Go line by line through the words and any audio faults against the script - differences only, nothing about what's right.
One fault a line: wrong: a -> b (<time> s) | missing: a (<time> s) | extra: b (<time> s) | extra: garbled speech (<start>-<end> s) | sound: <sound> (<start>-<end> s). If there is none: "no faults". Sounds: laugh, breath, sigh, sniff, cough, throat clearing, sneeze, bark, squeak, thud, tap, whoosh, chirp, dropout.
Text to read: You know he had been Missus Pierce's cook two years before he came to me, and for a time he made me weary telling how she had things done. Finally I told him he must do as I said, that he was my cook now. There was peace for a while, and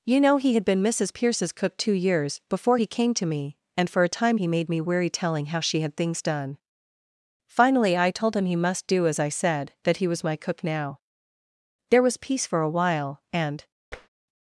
sound: tap (13.9-14.1 s)